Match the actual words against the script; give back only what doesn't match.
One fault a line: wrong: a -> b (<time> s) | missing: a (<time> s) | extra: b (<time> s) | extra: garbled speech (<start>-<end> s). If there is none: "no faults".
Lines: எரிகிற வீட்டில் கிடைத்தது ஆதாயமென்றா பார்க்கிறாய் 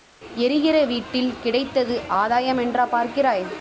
no faults